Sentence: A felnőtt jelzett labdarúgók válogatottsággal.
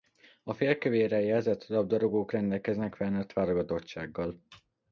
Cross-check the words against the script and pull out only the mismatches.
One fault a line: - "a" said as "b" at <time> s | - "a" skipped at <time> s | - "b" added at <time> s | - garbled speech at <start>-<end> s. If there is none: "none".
- "felnőtt" said as "félkövérrel" at 0.5 s
- "rendelkeznek felnőtt" added at 2.3 s